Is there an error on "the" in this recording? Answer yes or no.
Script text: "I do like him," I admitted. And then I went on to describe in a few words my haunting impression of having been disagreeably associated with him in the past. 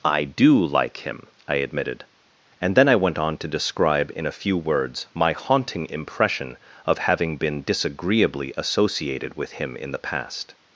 no